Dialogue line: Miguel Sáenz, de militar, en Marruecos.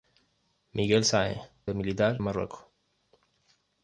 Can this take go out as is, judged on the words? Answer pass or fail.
pass